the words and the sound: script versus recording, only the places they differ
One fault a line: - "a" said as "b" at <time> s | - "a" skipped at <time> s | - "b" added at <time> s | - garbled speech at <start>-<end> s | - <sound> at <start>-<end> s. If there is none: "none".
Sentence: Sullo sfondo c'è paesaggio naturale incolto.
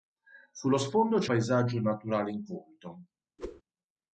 - whoosh at 3.4-3.6 s